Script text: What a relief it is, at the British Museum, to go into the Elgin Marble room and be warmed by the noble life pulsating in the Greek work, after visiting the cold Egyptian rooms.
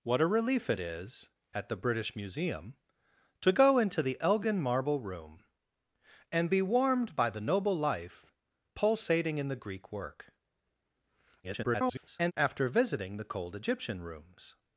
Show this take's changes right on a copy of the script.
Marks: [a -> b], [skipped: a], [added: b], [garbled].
What a relief it is, at the British Museum, to go into the Elgin Marble room and be warmed by the noble life pulsating in the Greek work, [garbled] after visiting the cold Egyptian rooms.